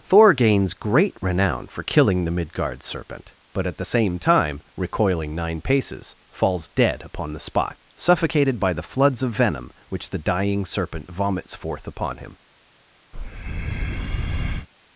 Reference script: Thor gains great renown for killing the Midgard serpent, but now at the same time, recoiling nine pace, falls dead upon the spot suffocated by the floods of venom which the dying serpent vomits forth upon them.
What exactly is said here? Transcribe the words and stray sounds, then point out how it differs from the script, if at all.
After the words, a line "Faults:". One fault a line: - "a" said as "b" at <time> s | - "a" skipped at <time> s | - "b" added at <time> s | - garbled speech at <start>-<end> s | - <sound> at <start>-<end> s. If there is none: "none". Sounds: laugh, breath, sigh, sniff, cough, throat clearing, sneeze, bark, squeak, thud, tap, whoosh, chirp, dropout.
Thor gains great renown for killing the Midgard serpent, but at the same time, recoiling nine paces, falls dead upon the spot suffocated by the floods of venom which the dying serpent vomits forth upon him.
Faults:
- "now" skipped at 3.7 s
- "pace" said as "paces" at 5.6 s
- "them" said as "him" at 12.2 s
- breath at 13.1-14.7 s